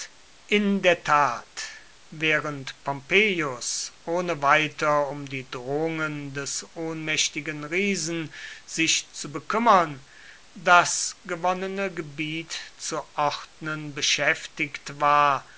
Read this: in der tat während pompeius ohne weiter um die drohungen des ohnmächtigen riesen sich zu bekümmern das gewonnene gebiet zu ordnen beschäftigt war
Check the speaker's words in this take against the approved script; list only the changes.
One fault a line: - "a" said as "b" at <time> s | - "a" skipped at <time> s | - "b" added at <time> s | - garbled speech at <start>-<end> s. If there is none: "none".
none